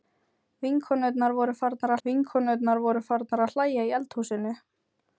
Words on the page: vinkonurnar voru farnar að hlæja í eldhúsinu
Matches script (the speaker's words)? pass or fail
fail